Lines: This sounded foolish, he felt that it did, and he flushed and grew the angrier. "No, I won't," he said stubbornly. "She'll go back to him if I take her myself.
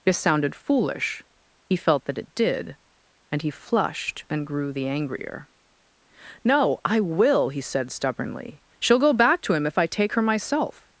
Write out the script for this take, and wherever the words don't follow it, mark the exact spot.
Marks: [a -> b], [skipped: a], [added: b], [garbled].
This sounded foolish, he felt that it did, and he flushed and grew the angrier. "No, I [won't," -> will] he said stubbornly. "She'll go back to him if I take her myself.